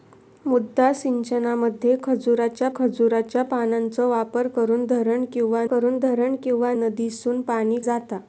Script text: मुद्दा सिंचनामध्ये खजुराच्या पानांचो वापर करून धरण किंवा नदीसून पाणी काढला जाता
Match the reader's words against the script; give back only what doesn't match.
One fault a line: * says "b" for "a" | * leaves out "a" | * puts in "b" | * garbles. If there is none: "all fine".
* puts in "खजुराच्या"
* puts in "करून धरण किंवा"
* leaves out "काढला"